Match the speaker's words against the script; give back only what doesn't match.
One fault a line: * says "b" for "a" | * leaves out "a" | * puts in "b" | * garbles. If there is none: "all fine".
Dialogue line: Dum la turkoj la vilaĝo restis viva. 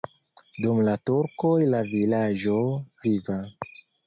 * leaves out "restis"